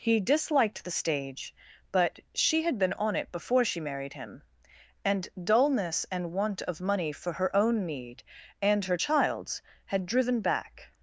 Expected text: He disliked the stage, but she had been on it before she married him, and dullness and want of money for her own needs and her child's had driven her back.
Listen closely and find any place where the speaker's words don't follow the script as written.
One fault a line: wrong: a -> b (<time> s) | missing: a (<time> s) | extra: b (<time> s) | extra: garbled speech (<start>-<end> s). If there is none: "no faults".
wrong: needs -> need (7.8 s)
missing: her (10.4 s)